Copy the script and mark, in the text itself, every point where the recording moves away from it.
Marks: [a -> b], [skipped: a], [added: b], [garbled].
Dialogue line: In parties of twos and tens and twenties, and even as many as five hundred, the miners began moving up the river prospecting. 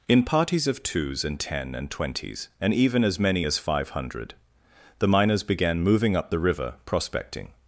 In parties of twos and [tens -> ten] and twenties, and even as many as five hundred, the miners began moving up the river prospecting.